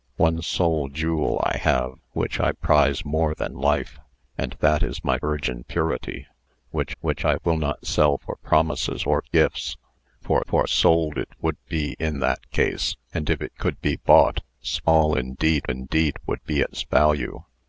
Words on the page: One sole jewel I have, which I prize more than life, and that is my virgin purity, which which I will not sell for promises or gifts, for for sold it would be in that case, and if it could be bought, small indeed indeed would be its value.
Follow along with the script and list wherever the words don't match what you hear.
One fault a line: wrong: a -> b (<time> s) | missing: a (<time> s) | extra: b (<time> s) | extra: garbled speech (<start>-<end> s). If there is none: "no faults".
no faults